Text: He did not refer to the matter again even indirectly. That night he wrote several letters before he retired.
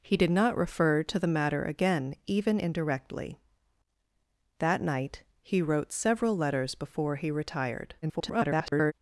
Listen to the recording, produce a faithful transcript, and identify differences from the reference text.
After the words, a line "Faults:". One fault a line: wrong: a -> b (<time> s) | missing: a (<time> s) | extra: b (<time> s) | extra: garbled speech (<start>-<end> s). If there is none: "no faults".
He did not refer to the matter again even indirectly. That night he wrote several letters before he retired. [garbled]
Faults:
extra: garbled speech (8.0-8.9 s)